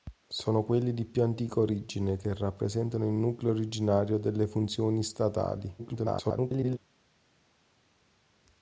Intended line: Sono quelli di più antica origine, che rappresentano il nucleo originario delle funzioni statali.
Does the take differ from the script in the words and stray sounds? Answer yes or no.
yes